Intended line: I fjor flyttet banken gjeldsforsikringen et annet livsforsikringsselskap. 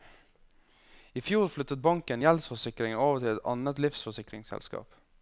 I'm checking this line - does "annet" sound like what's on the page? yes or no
yes